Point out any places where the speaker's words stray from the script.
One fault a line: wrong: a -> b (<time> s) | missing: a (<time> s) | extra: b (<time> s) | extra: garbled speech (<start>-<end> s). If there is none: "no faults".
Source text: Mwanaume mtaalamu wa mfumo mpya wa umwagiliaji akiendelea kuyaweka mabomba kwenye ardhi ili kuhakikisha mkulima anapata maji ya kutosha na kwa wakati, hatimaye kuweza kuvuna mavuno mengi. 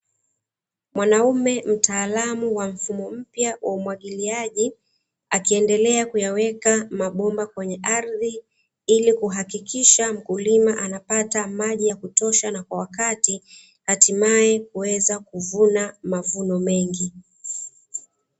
no faults